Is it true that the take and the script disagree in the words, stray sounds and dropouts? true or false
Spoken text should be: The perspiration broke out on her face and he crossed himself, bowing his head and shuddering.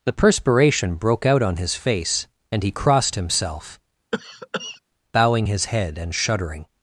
true